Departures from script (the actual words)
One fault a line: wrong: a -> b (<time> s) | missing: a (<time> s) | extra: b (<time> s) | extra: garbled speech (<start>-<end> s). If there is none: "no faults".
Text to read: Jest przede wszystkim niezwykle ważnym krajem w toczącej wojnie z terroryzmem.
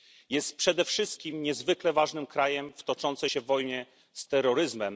extra: się (3.2 s)